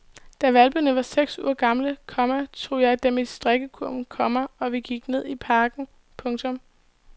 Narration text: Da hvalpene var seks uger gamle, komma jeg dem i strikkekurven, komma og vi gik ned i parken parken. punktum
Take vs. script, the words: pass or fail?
fail